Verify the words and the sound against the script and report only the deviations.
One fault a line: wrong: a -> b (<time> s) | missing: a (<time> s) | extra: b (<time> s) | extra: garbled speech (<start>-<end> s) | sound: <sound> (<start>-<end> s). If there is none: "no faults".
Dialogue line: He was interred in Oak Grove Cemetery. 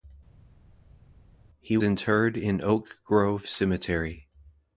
missing: was (1.8 s)